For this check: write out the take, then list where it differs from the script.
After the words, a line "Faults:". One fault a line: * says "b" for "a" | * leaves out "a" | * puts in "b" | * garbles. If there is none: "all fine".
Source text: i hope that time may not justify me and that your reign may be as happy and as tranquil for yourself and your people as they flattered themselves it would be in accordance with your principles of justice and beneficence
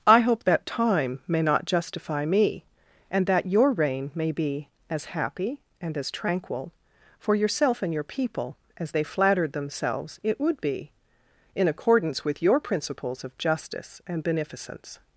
i hope that time may not justify me and that your reign may be as happy and as tranquil for yourself and your people as they flattered themselves it would be in accordance with your principles of justice and beneficence
Faults:
all fine